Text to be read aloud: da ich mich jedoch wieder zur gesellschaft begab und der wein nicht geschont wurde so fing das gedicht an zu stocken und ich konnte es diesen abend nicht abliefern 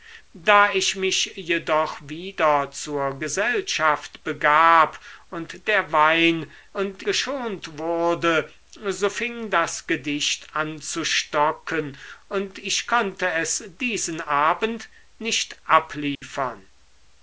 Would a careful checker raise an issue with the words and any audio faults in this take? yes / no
yes